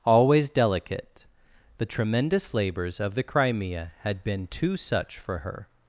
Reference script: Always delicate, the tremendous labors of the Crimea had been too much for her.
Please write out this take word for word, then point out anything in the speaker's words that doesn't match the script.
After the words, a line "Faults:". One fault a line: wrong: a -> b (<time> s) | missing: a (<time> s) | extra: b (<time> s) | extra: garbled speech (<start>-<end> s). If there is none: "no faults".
Always delicate, the tremendous labors of the Crimea had been too such for her.
Faults:
wrong: much -> such (4.8 s)